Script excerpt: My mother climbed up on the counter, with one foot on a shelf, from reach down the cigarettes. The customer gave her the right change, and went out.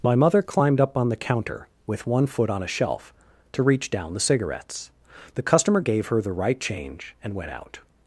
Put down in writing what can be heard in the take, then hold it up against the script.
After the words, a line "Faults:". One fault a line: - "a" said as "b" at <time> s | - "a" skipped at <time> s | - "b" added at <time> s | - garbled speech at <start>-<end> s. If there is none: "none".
My mother climbed up on the counter, with one foot on a shelf, to reach down the cigarettes. The customer gave her the right change, and went out.
Faults:
- "from" said as "to" at 3.5 s